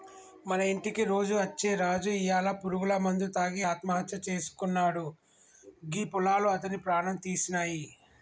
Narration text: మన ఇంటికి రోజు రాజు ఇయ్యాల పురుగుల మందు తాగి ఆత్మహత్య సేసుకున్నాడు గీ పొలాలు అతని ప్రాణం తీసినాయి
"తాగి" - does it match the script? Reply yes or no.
yes